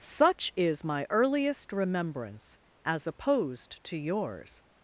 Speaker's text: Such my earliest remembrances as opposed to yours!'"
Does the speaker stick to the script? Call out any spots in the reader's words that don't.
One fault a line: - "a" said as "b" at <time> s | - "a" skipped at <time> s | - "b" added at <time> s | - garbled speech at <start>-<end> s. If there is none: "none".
- "is" added at 0.6 s
- "remembrances" said as "remembrance" at 1.7 s